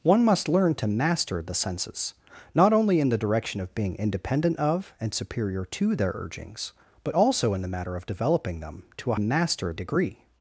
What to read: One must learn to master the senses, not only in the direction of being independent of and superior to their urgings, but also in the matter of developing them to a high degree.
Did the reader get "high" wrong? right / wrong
wrong